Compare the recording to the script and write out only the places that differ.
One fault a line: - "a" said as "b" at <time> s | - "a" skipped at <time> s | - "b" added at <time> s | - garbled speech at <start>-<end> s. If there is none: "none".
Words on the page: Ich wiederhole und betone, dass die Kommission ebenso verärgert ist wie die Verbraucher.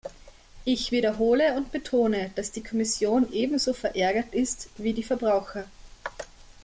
none